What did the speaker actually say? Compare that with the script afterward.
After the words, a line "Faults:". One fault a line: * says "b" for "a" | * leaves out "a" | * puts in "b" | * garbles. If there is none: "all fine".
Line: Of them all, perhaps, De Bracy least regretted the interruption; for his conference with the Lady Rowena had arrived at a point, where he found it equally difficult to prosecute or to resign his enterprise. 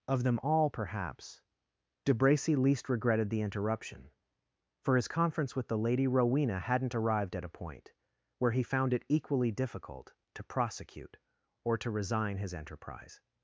Of them all, perhaps, De Bracy least regretted the interruption; for his conference with the Lady Rowena hadn't arrived at a point, where he found it equally difficult to prosecute or to resign his enterprise.
Faults:
* says "hadn't" for "had"